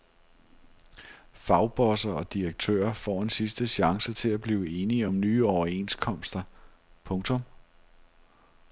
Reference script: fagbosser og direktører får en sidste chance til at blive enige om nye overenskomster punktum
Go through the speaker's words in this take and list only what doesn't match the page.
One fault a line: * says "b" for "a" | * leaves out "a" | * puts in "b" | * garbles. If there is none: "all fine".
all fine